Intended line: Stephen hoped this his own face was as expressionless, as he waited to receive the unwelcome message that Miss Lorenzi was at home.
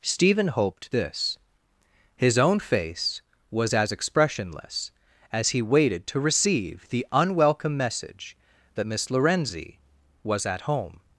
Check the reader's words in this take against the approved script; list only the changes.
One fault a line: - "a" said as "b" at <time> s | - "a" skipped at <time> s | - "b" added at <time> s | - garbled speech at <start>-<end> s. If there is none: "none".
none